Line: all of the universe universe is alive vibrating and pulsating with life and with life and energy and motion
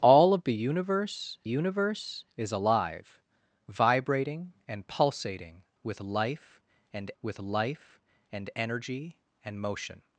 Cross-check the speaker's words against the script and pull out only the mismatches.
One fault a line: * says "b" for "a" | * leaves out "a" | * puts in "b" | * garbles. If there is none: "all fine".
all fine